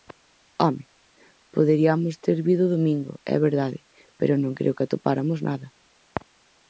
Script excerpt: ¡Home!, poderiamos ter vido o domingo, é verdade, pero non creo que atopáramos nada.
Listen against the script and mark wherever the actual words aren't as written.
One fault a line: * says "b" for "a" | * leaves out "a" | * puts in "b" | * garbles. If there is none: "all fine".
all fine